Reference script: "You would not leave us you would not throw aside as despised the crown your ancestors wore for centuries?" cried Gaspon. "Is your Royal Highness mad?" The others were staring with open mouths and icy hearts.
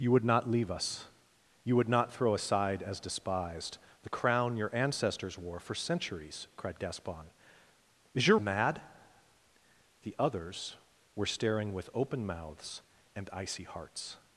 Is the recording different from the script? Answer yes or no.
yes